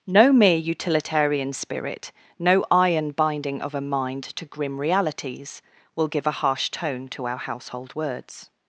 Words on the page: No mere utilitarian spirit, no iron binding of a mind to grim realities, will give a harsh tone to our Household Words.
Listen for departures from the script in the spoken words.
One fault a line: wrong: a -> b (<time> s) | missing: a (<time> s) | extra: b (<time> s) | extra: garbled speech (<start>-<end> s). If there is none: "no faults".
no faults